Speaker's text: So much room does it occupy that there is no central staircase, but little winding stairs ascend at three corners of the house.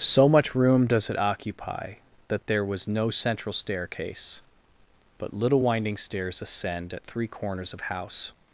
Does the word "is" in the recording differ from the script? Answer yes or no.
yes